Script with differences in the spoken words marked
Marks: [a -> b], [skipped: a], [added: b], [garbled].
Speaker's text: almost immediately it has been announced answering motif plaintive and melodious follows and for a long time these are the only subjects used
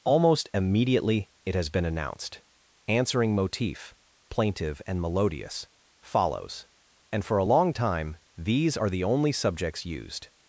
almost immediately it has been announced answering motif plaintive and melodious follows and for a long time these are the only subjects used